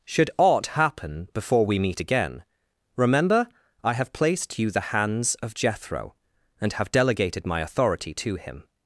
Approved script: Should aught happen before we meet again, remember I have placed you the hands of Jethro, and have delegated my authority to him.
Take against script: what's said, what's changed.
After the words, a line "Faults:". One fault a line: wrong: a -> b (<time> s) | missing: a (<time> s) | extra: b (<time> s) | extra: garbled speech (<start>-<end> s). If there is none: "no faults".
Should aught happen before we meet again, remember I have placed you the hands of Jethro, and have delegated my authority to him.
Faults:
no faults